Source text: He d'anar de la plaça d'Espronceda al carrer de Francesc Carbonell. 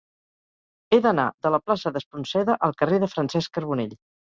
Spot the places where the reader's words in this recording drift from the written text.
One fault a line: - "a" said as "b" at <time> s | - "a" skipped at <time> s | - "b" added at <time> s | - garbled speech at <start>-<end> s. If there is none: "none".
none